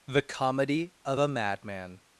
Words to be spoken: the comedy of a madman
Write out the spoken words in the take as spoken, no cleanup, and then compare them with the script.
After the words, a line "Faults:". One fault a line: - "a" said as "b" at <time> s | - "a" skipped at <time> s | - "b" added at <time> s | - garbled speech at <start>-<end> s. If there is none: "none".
the comedy of a madman
Faults:
none